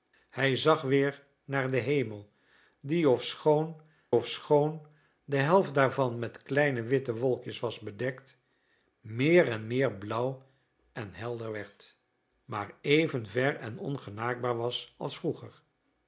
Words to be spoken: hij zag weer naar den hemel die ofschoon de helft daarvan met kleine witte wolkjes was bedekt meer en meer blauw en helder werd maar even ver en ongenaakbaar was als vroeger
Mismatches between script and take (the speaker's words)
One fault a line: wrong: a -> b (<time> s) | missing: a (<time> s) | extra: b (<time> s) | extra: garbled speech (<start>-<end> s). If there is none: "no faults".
extra: ofschoon (4.1 s)